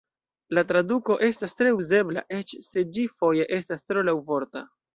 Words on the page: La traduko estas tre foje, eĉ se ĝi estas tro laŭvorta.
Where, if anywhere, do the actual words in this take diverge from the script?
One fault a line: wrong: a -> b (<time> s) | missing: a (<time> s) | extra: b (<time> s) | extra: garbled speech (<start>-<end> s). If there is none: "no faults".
wrong: foje -> uzebla (1.8 s)
extra: foje (3.2 s)